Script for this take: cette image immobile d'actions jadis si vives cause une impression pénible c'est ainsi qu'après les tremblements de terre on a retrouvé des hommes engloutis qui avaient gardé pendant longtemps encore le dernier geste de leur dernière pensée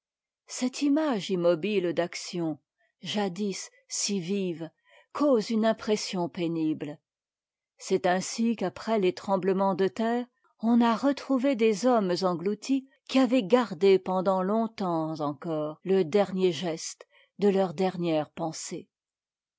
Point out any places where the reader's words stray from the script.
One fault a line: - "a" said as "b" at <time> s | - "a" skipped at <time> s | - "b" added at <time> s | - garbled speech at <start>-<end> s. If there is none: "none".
none